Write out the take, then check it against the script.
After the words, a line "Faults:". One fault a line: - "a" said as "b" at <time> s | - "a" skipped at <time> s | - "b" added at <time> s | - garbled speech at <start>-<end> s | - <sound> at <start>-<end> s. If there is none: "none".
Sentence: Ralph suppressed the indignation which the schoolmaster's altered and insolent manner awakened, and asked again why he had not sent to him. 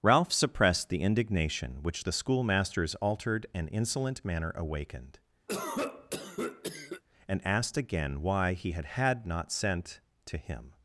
Ralph suppressed the indignation which the schoolmaster's altered and insolent manner awakened, and asked again why he had had not sent to him.
Faults:
- cough at 5.5-7.0 s
- "had" added at 8.8 s